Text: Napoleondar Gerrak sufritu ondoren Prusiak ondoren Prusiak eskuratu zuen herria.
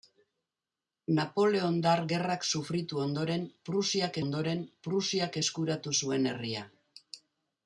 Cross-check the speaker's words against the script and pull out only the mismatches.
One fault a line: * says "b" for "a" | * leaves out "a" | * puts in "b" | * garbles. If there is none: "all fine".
all fine